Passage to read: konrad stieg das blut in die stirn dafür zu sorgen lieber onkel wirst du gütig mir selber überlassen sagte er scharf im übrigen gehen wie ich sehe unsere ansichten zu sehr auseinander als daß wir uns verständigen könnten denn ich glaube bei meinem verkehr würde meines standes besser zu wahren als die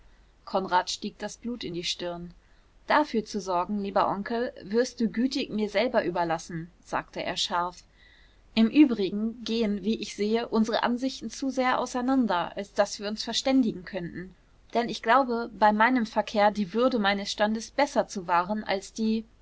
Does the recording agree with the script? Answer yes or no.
no